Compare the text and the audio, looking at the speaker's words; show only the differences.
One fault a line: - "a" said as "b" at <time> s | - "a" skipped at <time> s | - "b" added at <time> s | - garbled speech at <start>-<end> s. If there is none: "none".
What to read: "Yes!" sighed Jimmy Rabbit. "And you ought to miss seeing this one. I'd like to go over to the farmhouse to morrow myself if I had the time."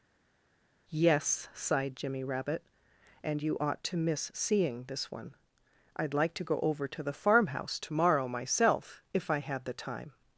none